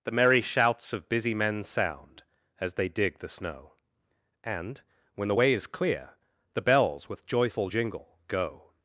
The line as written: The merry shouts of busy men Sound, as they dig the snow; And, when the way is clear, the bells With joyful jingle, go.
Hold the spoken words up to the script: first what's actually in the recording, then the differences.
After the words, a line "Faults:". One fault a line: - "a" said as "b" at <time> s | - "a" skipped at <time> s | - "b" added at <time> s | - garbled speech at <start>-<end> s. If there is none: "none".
The merry shouts of busy men Sound, as they dig the snow; And, when the way is clear, the bells With joyful jingle, go.
Faults:
none